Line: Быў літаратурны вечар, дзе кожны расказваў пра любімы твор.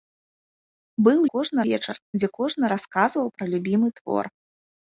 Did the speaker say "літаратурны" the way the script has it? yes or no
no